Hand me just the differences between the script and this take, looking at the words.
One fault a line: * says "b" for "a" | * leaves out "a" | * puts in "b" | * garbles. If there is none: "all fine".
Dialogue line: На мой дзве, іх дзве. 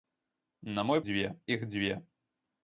all fine